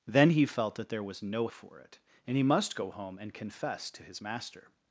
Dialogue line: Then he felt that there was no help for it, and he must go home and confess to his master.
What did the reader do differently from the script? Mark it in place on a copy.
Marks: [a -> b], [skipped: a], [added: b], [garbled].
Then he felt that there was no [skipped: help] for it, and he must go home and confess to his master.